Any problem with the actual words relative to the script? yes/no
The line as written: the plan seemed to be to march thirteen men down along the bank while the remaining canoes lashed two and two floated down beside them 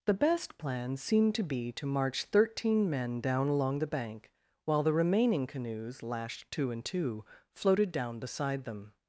yes